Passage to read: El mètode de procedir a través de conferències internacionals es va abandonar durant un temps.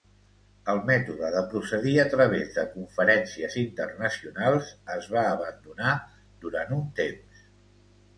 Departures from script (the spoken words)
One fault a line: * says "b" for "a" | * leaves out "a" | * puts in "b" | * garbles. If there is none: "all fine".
all fine